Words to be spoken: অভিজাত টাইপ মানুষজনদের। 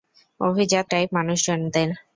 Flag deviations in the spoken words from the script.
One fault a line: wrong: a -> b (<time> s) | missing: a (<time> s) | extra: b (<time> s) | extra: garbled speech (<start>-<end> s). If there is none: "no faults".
no faults